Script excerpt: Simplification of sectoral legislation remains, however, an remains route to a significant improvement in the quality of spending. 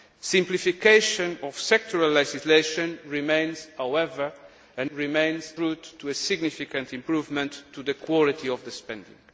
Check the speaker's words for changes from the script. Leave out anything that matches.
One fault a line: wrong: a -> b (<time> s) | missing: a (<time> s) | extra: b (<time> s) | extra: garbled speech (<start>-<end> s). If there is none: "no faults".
no faults